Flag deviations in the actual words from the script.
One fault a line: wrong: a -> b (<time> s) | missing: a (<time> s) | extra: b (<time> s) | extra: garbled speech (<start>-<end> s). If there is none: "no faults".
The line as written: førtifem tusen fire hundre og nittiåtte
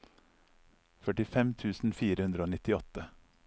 no faults